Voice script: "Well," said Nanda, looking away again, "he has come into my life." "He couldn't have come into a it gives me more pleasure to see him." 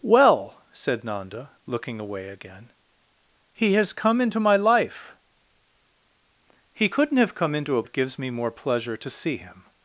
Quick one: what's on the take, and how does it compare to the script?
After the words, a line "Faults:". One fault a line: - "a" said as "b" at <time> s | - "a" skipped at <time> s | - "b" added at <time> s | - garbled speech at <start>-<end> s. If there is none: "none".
"Well," said Nanda, looking away again, "he has come into my life." "He couldn't have come into a it gives me more pleasure to see him."
Faults:
none